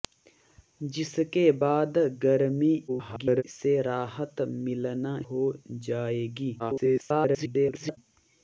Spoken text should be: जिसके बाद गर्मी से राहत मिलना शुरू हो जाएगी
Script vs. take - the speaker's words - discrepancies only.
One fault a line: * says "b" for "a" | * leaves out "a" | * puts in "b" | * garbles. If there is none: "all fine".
* garbles
* leaves out "शुरू"
* garbles